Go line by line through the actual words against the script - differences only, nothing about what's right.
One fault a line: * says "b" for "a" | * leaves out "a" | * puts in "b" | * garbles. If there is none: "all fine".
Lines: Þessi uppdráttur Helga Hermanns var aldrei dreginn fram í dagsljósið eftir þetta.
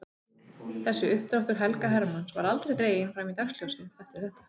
all fine